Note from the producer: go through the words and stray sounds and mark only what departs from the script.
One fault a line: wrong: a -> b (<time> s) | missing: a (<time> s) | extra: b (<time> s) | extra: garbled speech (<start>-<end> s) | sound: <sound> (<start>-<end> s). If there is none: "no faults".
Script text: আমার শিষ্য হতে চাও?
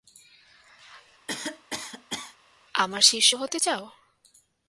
sound: cough (1.3-2.4 s)